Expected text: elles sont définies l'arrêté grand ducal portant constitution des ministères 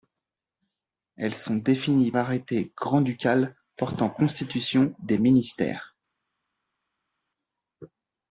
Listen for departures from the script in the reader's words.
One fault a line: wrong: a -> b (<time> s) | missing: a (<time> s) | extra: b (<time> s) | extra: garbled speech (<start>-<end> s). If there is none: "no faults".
no faults